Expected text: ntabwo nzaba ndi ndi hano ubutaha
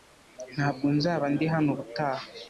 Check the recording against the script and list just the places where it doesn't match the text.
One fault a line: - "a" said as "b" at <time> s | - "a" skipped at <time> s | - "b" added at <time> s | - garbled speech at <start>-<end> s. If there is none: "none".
- "ndi" skipped at 1.4 s